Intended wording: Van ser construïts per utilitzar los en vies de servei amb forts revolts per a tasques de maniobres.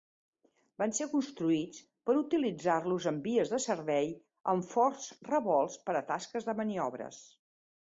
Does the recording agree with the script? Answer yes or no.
yes